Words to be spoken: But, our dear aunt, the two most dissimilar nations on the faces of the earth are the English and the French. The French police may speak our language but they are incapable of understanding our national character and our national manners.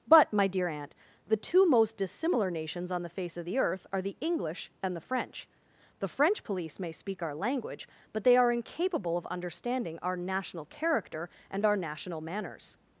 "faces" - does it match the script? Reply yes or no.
no